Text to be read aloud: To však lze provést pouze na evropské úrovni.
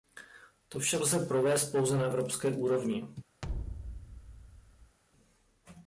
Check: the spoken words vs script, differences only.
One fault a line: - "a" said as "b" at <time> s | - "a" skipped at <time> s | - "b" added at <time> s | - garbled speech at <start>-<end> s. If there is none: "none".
none